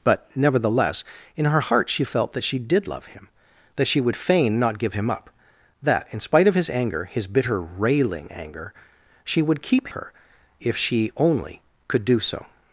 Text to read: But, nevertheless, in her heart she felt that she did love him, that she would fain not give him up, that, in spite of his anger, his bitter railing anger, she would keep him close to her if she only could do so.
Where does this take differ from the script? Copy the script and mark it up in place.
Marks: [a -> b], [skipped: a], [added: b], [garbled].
But, nevertheless, in her heart she felt that she did love him, that she would fain not give him up, that, in spite of his anger, his bitter railing anger, she would keep [skipped: him close to] her if she only could do so.